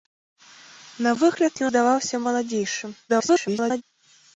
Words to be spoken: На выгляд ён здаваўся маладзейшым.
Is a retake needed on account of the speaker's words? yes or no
yes